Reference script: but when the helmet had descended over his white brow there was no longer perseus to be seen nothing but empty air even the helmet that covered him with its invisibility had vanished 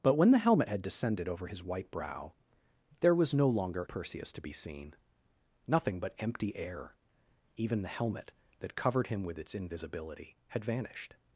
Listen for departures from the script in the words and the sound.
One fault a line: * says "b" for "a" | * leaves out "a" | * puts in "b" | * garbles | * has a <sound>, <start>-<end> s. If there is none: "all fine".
all fine